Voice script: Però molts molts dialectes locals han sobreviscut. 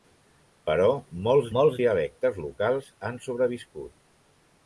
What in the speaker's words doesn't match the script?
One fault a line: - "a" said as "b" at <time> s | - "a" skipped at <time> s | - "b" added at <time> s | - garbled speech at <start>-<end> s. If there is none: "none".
none